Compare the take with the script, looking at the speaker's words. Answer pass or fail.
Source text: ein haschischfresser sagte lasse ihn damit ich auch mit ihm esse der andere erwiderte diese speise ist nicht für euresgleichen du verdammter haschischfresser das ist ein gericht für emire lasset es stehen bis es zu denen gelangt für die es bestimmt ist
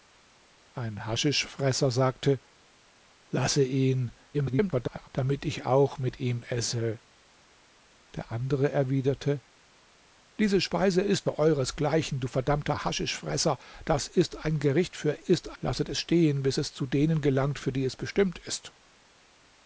fail